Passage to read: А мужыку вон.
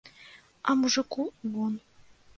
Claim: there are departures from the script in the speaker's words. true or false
false